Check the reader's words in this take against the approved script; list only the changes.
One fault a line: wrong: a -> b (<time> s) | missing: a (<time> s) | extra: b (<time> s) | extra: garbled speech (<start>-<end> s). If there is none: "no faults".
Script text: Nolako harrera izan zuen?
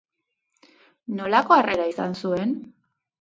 no faults